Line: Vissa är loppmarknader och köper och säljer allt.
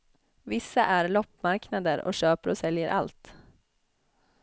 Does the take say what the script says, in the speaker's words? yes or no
yes